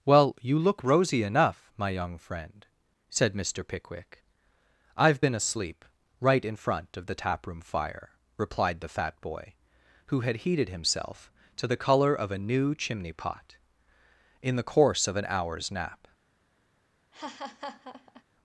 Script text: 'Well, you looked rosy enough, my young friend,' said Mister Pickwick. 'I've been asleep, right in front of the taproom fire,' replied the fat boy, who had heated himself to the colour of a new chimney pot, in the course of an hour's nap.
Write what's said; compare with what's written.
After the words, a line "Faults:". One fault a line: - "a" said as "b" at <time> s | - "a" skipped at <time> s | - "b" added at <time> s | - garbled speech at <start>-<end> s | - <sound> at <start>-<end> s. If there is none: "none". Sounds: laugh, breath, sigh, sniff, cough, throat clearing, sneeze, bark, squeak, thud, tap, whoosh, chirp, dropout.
'Well, you look rosy enough, my young friend,' said Mister Pickwick. 'I've been asleep, right in front of the taproom fire,' replied the fat boy, who had heated himself to the colour of a new chimney pot, in the course of an hour's nap.
Faults:
- "looked" said as "look" at 0.6 s
- laugh at 17.1-18.2 s